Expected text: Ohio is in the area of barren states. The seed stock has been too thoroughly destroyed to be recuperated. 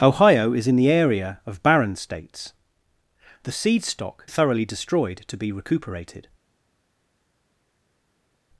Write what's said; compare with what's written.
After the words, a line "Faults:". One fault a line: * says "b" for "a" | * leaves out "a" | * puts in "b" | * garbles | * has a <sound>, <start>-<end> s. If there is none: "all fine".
Ohio is in the area of barren states. The seed stock thoroughly destroyed to be recuperated.
Faults:
* leaves out "has been too"